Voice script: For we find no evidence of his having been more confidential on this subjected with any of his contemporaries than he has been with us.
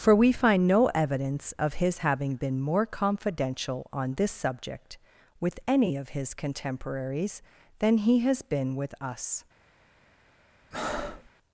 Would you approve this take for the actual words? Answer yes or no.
no